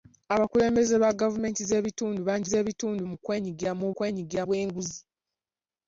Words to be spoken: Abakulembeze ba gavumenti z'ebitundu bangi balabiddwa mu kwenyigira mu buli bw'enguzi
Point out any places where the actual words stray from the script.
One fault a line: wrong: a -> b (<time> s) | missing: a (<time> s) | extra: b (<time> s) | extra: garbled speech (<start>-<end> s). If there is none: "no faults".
wrong: balabiddwa -> z'ebitundu (2.5 s)
wrong: buli -> kwenyigira (3.9 s)